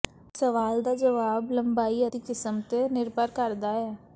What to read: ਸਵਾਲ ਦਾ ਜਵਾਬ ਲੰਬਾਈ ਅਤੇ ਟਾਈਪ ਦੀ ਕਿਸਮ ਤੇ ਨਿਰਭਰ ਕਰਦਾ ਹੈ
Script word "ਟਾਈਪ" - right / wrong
wrong